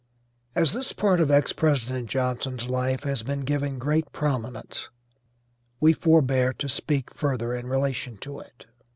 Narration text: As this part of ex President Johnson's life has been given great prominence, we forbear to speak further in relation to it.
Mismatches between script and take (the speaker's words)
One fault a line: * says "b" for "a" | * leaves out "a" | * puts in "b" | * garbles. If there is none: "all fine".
all fine